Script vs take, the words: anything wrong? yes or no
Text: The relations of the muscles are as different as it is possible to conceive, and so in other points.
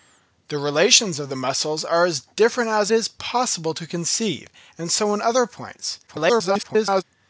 yes